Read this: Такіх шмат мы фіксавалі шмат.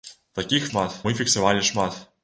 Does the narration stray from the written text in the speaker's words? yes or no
no